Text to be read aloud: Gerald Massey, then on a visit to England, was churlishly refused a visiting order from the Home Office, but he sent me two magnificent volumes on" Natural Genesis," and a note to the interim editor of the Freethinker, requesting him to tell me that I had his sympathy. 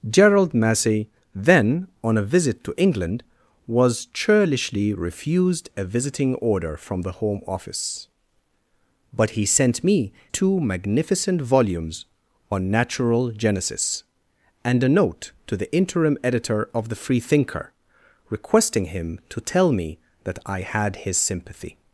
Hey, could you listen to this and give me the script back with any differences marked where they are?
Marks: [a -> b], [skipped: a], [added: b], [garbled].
Gerald Massey, then on a visit to England, was churlishly refused a visiting order from the Home Office, but he sent me two magnificent volumes on" Natural Genesis," and a note to the interim editor of the Freethinker, requesting him to tell me that I had his sympathy.